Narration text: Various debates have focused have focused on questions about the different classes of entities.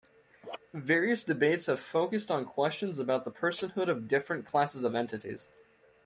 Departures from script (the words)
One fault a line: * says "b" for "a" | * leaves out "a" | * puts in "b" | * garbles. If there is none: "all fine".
* leaves out "have focused"
* puts in "personhood of"